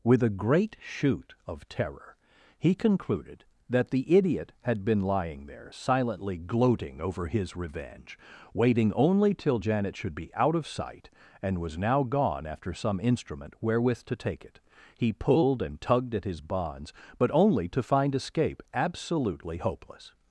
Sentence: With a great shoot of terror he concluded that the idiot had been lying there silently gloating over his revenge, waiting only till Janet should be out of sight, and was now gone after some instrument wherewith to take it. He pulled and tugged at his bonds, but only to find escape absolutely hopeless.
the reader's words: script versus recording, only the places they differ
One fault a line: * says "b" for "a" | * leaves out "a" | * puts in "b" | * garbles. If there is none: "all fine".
all fine